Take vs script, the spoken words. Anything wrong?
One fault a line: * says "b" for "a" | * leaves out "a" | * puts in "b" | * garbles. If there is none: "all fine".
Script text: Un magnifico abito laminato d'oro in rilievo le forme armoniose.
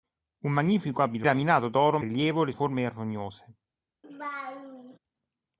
all fine